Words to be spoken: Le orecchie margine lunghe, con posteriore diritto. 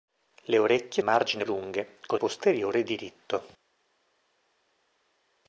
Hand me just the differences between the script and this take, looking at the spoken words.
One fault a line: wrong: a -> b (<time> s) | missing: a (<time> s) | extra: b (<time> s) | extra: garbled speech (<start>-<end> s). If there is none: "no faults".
no faults